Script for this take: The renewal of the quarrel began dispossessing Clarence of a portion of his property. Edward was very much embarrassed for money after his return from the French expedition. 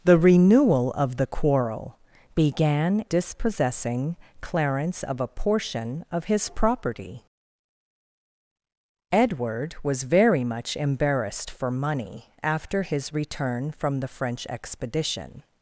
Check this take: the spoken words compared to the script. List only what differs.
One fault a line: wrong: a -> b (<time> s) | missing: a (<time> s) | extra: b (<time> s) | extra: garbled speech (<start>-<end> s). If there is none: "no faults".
no faults